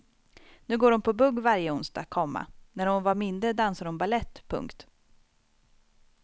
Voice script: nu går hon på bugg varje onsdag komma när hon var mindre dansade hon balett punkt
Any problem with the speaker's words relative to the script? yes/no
no